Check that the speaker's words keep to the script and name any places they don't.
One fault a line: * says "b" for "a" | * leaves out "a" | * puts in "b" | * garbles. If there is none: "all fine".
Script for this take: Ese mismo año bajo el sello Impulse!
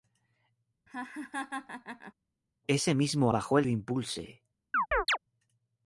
* leaves out "año"
* leaves out "sello"